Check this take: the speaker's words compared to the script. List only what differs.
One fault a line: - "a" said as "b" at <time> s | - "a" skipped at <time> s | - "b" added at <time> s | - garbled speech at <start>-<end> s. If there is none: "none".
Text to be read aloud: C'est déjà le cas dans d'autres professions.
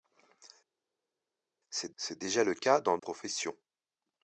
- "c'est" added at 2.0 s
- "d'autres" skipped at 3.0 s